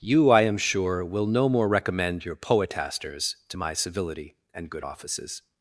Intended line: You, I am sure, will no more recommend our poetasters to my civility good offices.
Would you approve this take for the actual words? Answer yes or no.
no